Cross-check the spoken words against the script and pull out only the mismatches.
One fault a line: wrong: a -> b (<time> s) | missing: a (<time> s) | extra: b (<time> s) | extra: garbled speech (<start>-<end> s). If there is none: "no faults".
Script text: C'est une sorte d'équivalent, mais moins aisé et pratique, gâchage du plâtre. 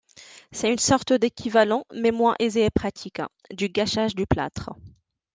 extra: du (3.5 s)